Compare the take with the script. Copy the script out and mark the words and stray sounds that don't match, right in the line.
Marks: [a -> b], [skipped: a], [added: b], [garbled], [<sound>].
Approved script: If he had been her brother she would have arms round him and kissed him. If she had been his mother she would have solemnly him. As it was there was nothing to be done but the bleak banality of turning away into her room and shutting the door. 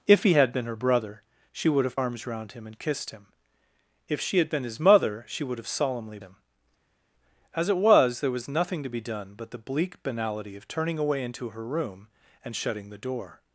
If he had been her brother she would have arms round him and kissed him. If she had been his mother she would have solemnly him. As it was there was nothing to be done but the bleak banality of turning away into her room and shutting the door.